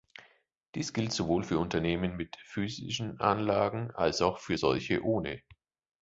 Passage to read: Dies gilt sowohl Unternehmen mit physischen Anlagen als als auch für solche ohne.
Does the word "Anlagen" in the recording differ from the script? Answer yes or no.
no